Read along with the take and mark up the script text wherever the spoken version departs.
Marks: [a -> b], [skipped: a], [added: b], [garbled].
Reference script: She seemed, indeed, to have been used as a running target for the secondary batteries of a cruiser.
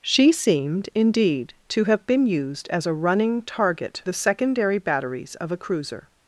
She seemed, indeed, to have been used as a running target [skipped: for] the secondary batteries of a cruiser.